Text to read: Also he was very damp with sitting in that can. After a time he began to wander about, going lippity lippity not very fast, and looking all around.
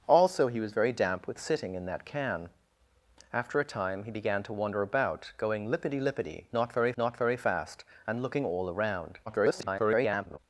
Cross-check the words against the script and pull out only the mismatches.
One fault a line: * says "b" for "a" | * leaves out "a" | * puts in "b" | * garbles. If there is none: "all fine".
* puts in "not very"
* garbles